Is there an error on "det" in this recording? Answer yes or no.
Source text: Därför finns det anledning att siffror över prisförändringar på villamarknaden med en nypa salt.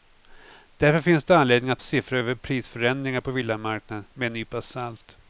no